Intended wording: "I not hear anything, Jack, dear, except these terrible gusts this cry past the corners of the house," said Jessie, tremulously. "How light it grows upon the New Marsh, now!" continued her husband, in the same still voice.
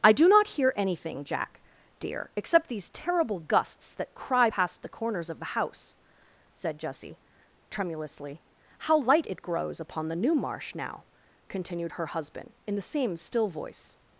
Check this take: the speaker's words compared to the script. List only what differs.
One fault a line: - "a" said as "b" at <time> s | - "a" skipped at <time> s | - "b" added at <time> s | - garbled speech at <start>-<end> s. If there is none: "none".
- "do" added at 0.1 s
- "this" said as "that" at 4.0 s